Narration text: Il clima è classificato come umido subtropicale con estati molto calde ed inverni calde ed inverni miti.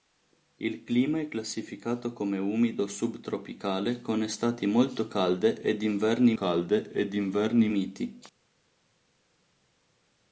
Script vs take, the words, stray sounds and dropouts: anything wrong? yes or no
no